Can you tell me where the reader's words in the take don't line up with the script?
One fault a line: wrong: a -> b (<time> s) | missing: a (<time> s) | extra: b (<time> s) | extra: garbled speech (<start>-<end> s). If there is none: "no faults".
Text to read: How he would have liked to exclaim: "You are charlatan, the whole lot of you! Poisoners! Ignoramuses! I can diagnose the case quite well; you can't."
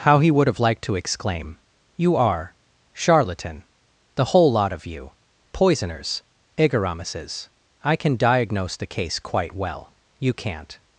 no faults